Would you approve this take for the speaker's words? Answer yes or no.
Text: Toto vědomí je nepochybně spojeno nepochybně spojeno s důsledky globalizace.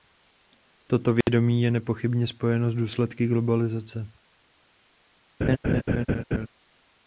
no